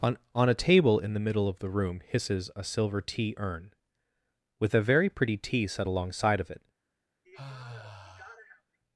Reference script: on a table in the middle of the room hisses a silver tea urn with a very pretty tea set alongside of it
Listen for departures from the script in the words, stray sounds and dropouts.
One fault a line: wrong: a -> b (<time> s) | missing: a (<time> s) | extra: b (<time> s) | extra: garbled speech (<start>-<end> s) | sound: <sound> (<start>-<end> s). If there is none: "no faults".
extra: on (0.3 s)
sound: sigh (7.2-8.8 s)